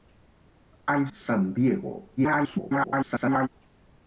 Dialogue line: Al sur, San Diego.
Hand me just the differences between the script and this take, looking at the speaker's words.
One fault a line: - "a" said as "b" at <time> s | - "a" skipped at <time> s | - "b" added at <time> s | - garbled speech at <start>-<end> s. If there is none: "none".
- "sur" skipped at 1.1 s
- garbled speech at 2.2-3.5 s